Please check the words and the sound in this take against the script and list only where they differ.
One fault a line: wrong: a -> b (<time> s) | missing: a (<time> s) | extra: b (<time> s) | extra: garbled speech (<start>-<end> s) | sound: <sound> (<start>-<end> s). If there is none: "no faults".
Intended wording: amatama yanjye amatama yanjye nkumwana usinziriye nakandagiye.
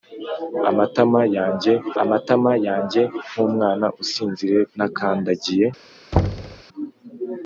sound: thud (6.1-6.6 s)